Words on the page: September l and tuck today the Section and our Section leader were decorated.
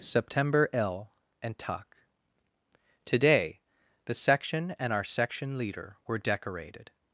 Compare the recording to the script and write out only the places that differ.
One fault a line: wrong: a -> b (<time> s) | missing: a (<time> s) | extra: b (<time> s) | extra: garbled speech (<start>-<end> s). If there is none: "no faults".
no faults